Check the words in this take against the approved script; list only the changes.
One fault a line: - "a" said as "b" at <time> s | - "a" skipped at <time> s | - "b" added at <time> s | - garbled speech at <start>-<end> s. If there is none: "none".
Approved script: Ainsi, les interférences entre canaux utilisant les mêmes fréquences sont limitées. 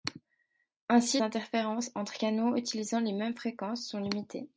- "les" skipped at 1.2 s